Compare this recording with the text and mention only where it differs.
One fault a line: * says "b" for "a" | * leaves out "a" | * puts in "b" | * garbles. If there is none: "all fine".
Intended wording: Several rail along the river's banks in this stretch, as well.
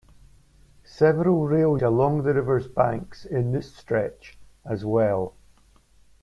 all fine